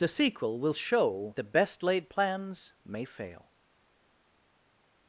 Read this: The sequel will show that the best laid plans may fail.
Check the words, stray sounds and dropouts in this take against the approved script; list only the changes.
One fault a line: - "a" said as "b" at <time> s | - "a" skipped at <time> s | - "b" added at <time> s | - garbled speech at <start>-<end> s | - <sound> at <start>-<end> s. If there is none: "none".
- "that" skipped at 1.4 s